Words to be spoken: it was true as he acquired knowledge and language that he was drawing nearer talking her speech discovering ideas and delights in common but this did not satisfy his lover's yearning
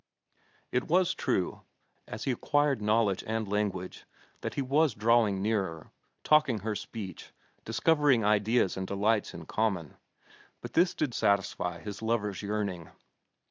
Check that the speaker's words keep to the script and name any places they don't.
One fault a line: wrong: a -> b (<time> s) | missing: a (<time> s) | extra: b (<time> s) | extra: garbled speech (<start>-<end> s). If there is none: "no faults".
missing: not (11.1 s)